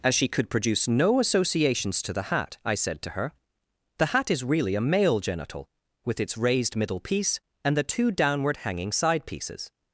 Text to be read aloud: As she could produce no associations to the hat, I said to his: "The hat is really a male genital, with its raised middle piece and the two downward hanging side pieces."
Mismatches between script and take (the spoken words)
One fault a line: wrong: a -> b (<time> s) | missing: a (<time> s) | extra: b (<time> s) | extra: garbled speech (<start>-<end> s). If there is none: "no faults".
wrong: his -> her (3.1 s)